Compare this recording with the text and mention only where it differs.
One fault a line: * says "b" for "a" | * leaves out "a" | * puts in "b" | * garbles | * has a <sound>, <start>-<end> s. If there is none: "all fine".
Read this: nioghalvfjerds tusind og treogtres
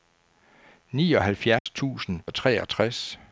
* has a dropout, 1.6-1.7 s